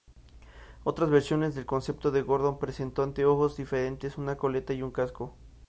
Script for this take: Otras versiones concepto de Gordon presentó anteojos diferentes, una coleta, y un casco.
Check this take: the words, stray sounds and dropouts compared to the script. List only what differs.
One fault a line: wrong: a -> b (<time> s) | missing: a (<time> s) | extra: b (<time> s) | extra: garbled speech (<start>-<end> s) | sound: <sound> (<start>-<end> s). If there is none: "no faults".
extra: del (1.5 s)